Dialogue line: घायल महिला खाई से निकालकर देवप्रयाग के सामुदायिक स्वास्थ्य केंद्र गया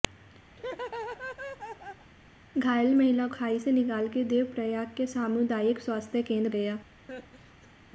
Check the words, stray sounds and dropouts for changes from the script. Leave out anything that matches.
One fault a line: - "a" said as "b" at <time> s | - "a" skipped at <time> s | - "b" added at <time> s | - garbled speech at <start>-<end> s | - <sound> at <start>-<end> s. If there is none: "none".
- laugh at 0.5-2.1 s
- laugh at 7.1-7.7 s